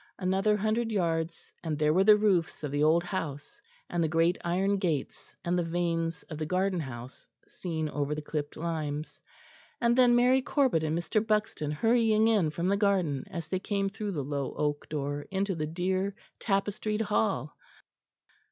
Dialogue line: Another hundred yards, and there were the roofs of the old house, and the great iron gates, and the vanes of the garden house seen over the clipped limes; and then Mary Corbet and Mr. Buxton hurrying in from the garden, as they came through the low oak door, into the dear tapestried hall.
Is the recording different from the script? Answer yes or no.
no